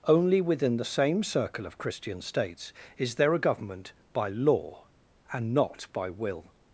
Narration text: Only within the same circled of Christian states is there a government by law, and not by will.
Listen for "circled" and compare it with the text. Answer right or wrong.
wrong